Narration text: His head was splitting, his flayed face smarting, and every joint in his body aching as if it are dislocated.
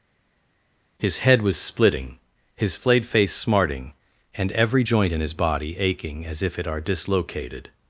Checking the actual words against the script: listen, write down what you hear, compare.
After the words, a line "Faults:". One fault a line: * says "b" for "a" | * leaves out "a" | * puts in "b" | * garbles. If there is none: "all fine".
His head was splitting, his flayed face smarting, and every joint in his body aching as if it are dislocated.
Faults:
all fine